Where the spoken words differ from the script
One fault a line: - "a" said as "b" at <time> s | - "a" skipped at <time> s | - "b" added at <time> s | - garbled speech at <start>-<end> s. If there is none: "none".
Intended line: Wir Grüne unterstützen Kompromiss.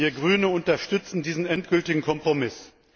- "diesen endgültigen" added at 1.2 s